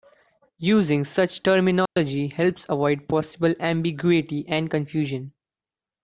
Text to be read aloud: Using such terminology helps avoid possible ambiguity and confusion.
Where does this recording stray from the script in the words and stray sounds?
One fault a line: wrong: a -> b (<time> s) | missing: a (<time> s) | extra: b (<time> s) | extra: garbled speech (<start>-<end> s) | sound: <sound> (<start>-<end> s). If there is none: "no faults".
sound: dropout (1.9-2.0 s)